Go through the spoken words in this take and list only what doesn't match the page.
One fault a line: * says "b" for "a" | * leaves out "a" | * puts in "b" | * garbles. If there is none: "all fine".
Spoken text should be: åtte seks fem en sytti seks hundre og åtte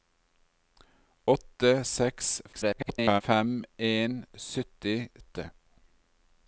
* garbles
* leaves out "seks hundre og"